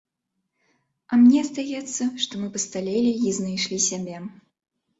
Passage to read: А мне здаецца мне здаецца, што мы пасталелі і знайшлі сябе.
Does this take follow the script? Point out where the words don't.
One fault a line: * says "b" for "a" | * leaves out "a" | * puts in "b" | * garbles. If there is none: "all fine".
* leaves out "мне здаецца"